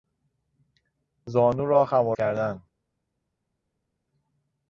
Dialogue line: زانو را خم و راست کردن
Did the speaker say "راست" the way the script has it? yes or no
no